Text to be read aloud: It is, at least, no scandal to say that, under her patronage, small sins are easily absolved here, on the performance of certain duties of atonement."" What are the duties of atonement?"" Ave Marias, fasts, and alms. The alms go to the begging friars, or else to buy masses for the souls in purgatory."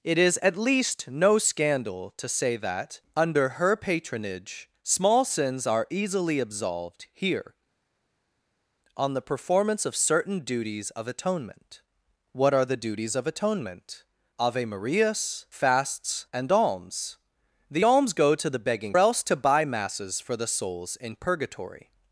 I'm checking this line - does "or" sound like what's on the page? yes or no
no